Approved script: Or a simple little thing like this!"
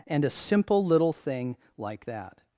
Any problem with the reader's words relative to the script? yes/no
yes